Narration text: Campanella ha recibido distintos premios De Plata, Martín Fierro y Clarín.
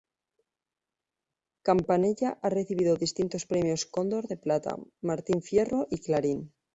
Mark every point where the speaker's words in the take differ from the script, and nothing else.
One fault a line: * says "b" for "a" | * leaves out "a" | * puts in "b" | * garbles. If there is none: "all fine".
* puts in "Cóndor"